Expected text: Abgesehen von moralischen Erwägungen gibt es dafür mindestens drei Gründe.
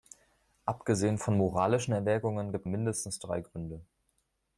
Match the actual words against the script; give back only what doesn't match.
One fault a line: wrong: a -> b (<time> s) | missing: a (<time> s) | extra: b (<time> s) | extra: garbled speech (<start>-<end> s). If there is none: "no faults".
missing: es dafür (2.7 s)